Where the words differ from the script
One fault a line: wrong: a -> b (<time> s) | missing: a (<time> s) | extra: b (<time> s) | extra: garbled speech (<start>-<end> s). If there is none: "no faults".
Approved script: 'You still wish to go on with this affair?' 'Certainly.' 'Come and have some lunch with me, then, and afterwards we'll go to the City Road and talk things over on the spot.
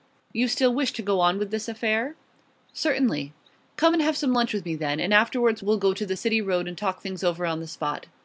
no faults